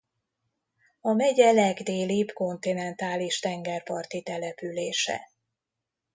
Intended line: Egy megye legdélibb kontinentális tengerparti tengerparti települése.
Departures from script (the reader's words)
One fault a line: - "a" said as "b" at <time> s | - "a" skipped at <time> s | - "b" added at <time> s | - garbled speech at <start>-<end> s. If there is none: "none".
- "Egy" said as "A" at 1.0 s
- "tengerparti" skipped at 4.2 s